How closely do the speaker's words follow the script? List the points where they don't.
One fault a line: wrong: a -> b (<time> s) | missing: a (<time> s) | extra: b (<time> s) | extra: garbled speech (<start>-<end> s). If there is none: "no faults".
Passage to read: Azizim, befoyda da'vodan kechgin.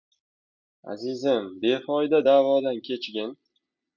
no faults